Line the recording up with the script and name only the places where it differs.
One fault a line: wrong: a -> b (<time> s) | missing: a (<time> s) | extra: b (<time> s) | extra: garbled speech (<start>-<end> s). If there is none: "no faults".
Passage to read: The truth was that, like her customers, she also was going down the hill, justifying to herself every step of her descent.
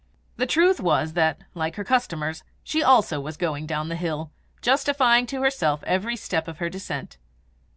no faults